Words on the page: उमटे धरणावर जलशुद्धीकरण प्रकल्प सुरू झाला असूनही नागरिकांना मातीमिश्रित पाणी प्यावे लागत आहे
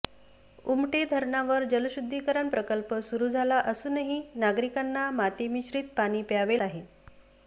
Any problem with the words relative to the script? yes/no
yes